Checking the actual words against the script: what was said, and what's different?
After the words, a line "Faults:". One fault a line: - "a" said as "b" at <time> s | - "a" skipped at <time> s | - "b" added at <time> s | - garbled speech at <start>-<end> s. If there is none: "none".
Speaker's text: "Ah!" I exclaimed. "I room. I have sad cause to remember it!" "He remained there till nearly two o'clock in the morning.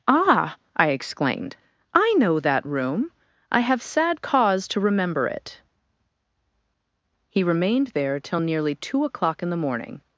"Ah!" I exclaimed. "I know that room. I have sad cause to remember it!" "He remained there till nearly two o'clock in the morning.
Faults:
- "know that" added at 2.2 s